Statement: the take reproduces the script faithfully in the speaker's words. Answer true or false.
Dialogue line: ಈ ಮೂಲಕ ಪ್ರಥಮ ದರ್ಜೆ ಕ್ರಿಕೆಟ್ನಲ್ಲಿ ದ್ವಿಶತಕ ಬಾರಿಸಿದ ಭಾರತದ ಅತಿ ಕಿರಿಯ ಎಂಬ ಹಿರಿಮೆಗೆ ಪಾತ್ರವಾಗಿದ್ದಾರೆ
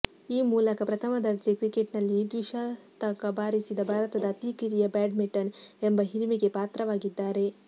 false